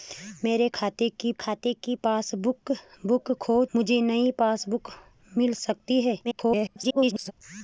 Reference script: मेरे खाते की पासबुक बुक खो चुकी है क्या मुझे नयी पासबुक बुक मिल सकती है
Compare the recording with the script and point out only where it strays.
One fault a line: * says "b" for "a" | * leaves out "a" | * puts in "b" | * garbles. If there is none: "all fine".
* puts in "खाते की"
* leaves out "चुकी है क्या"
* garbles